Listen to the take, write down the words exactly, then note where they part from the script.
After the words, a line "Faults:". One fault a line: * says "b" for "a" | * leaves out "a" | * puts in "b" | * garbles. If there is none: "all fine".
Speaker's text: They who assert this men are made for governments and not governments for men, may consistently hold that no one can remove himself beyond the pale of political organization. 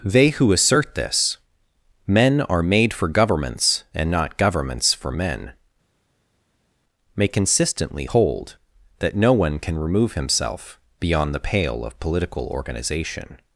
They who assert this men are made for governments and not governments for men, may consistently hold that no one can remove himself beyond the pale of political organization.
Faults:
all fine